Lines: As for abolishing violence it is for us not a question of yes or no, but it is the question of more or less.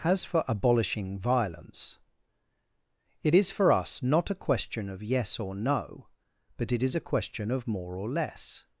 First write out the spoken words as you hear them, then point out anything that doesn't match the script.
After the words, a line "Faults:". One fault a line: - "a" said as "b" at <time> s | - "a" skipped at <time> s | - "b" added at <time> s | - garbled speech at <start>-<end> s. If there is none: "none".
As for abolishing violence it is for us not a question of yes or no, but it is a question of more or less.
Faults:
- "the" said as "a" at 7.0 s